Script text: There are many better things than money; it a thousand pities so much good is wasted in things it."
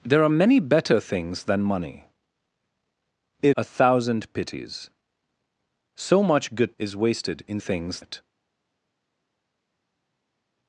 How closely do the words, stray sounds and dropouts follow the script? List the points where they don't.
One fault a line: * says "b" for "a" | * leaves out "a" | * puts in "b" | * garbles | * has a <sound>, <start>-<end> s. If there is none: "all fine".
all fine